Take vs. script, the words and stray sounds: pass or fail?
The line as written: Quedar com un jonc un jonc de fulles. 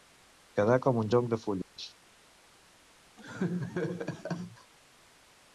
fail